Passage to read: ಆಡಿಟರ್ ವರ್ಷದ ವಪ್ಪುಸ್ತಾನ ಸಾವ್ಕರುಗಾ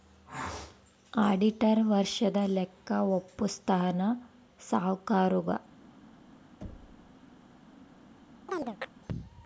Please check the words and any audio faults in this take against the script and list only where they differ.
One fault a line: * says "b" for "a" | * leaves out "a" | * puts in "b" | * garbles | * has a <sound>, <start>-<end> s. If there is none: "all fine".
* puts in "ಲೆಕ್ಕ"
* has a thud, 6.6-7.1 s
* has a chirp, 8.5-8.9 s